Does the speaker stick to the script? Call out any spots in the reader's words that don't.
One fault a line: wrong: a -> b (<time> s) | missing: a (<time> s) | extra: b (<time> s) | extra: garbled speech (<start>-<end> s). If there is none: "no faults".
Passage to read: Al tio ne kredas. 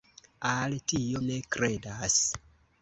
no faults